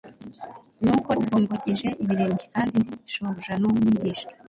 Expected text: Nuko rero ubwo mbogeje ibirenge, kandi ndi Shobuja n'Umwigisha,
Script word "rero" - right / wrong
wrong